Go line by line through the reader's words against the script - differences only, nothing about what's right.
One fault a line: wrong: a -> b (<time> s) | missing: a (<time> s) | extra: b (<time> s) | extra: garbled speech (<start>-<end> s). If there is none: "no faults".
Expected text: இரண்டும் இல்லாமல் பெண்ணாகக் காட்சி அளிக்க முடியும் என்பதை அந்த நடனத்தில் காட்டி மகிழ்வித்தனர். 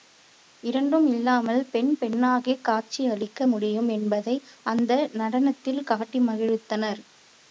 extra: பெண் (1.6 s)